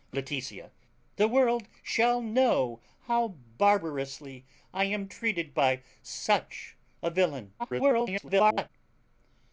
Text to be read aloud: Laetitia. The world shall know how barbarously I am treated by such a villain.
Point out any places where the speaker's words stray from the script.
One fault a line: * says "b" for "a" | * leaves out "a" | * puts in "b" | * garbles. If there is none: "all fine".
* garbles